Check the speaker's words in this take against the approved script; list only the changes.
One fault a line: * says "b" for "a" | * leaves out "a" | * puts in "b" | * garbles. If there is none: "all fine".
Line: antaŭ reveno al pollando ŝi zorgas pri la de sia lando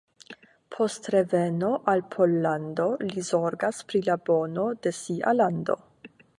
* says "post" for "antaŭ"
* says "li" for "ŝi"
* puts in "bono"